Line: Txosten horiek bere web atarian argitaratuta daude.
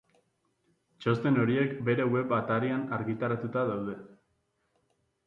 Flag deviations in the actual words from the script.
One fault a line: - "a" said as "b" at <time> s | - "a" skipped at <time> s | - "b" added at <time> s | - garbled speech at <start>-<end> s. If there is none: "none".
none